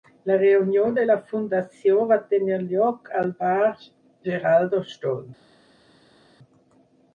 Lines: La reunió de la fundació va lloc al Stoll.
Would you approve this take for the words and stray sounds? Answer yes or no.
no